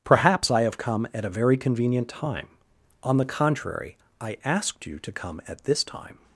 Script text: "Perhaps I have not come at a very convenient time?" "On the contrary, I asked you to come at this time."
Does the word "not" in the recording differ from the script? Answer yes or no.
yes